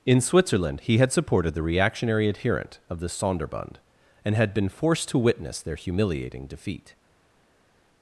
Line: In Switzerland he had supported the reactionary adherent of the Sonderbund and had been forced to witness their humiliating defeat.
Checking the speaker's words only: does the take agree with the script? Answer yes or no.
yes